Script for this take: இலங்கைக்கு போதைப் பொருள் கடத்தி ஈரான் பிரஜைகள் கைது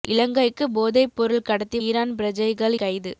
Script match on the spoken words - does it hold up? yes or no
yes